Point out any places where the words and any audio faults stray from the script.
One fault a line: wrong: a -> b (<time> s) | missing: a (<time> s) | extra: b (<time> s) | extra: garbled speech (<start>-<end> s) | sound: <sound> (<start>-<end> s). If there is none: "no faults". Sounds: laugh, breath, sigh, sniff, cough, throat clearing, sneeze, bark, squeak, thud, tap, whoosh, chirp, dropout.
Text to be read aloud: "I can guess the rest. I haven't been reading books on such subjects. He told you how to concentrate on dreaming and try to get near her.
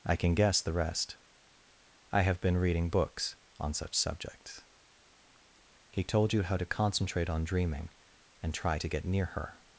wrong: haven't -> have (2.2 s)